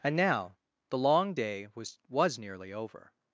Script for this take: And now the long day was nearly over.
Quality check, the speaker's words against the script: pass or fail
fail